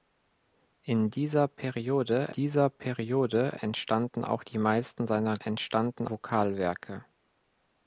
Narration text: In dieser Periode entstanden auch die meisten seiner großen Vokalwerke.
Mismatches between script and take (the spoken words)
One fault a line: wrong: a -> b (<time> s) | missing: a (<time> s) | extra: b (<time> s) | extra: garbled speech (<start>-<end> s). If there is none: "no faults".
extra: dieser Periode (2.3 s)
wrong: großen -> entstanden (5.5 s)